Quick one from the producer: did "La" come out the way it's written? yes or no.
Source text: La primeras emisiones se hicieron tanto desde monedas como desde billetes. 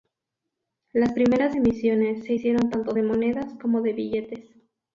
no